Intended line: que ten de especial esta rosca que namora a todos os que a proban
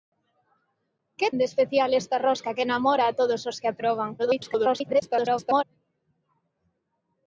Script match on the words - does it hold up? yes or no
no